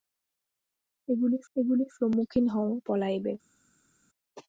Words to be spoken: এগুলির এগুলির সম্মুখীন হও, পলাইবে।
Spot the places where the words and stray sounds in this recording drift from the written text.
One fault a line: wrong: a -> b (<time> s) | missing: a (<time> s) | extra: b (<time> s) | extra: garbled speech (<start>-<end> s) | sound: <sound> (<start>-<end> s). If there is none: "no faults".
no faults